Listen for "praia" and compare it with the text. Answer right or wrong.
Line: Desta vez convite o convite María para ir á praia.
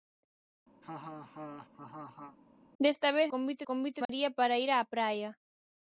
right